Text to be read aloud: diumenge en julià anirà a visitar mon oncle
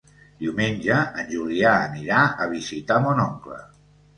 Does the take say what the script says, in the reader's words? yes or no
yes